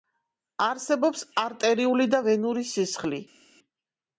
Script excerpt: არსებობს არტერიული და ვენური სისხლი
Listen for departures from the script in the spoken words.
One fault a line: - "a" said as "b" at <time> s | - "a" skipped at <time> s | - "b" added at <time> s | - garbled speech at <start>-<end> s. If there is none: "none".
none